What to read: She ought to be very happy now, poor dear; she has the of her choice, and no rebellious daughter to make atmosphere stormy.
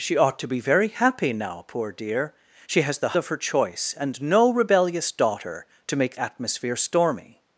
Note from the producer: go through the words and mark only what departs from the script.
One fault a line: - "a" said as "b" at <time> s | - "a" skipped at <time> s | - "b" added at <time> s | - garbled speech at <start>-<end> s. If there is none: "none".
none